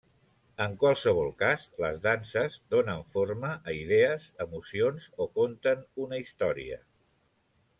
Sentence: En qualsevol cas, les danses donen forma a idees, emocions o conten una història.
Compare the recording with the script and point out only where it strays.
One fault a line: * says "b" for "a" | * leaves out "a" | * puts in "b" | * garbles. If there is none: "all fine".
all fine